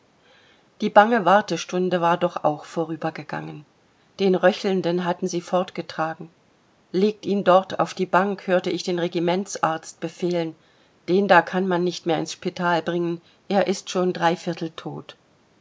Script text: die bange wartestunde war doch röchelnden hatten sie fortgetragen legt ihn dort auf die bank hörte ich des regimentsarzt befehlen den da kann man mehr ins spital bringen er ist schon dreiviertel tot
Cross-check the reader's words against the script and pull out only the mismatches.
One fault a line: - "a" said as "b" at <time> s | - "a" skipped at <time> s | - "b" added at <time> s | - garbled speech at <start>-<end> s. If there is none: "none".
- "auch vorübergegangen den" added at 2.4 s
- "des" said as "den" at 8.8 s
- "nicht" added at 11.8 s